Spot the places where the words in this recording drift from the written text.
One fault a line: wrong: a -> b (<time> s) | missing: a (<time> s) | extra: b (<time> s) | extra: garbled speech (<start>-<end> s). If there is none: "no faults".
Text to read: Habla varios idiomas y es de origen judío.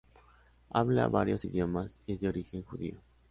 no faults